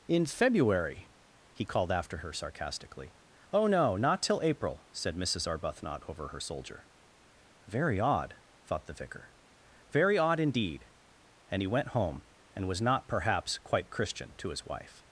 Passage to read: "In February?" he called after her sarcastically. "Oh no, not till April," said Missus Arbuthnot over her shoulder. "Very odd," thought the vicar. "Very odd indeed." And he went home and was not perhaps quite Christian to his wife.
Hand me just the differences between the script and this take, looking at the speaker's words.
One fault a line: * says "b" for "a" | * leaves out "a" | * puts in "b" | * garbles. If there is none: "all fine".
* says "soldier" for "shoulder"